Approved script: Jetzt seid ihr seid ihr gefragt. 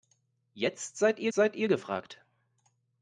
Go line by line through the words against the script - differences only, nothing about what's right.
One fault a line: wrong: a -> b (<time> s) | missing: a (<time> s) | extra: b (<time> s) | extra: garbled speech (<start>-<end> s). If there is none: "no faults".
no faults